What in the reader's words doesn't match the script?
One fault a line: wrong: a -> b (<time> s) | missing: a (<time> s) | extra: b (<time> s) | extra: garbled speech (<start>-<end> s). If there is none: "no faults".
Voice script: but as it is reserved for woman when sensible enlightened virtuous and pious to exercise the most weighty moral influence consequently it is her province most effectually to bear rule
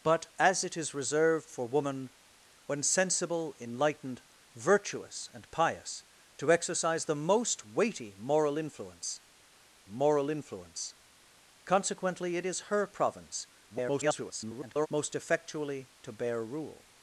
extra: moral influence (9.9 s)
extra: garbled speech (13.7-14.9 s)